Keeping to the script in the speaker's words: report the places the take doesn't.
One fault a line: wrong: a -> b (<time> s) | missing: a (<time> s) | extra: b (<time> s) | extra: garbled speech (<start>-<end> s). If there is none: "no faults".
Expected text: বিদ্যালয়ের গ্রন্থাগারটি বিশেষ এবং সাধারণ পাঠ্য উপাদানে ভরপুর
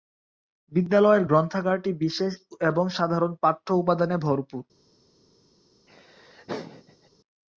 no faults